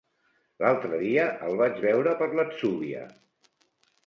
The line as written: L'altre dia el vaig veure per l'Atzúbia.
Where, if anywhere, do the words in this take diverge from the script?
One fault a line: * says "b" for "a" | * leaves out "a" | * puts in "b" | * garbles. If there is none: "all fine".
all fine